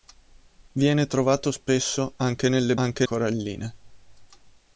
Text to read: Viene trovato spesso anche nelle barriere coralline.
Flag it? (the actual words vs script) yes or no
yes